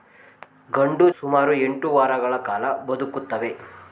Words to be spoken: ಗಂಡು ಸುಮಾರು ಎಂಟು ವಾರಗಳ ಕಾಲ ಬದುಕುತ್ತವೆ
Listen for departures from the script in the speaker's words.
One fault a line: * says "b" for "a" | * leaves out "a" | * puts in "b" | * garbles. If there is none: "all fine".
all fine